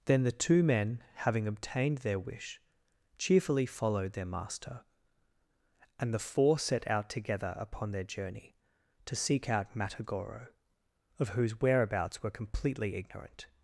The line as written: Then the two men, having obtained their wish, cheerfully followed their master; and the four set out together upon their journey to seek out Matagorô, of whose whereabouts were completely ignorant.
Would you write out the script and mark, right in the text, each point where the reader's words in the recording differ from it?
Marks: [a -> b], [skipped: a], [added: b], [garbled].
Then the two men, having obtained their wish, cheerfully followed their master; and the four set out together upon their journey to seek out Matagorô, of whose whereabouts were completely ignorant.